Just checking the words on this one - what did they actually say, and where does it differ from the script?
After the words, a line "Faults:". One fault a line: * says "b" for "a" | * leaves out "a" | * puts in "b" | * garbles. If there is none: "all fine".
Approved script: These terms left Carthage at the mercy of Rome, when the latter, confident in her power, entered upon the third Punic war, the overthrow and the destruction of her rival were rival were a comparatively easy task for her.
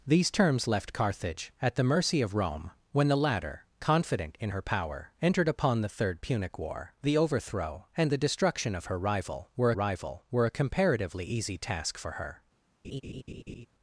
These terms left Carthage at the mercy of Rome, when the latter, confident in her power, entered upon the third Punic war, the overthrow and the destruction of her rival were rival were a comparatively easy task for her.
Faults:
all fine